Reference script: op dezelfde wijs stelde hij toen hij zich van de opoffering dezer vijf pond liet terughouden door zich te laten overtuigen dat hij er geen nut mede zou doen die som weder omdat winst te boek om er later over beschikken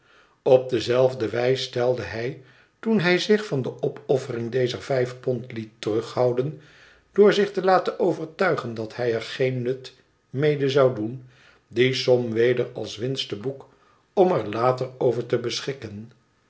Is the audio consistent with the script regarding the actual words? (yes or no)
no